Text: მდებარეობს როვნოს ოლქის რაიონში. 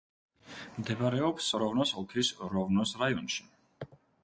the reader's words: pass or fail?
fail